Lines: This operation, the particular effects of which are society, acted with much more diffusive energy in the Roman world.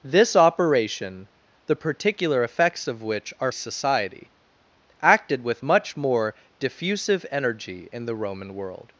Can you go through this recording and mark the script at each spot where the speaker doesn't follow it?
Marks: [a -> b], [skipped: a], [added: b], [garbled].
This operation, the particular effects of which are society, acted with much more diffusive energy in the Roman world.